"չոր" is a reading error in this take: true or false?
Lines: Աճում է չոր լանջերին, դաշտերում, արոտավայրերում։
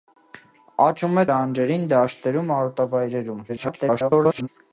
true